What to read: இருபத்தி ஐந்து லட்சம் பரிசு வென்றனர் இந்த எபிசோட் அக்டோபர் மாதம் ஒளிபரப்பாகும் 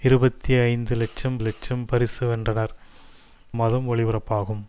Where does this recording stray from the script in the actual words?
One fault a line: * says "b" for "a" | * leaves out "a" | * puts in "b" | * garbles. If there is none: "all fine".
* puts in "லட்சம்"
* leaves out "இந்த எபிசோட் அக்டோபர்"